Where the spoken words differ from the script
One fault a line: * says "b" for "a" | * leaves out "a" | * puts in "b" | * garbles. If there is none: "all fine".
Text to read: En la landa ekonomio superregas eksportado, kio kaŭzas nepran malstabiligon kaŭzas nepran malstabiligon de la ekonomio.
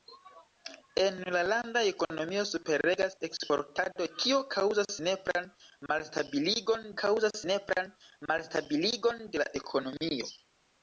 all fine